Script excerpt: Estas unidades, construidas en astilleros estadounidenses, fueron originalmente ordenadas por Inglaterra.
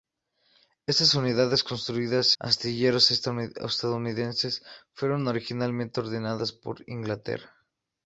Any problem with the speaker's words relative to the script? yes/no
yes